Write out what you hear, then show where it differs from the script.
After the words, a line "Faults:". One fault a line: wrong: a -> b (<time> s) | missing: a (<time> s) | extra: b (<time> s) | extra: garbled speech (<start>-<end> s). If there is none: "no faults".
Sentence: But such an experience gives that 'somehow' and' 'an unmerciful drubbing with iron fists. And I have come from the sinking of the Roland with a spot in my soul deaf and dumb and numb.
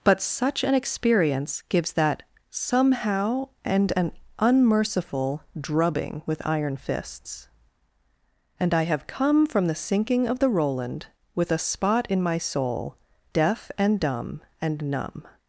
But such an experience gives that 'somehow' and' 'an unmerciful drubbing with iron fists. And I have come from the sinking of the Roland with a spot in my soul deaf and dumb and numb.
Faults:
no faults